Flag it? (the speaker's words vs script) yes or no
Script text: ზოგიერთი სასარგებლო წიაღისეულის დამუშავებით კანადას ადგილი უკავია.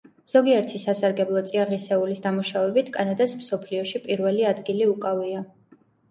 yes